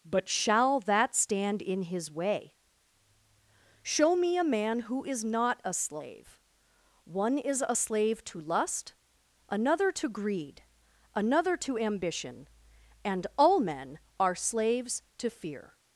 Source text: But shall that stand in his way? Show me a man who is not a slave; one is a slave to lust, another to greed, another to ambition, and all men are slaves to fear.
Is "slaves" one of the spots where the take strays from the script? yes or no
no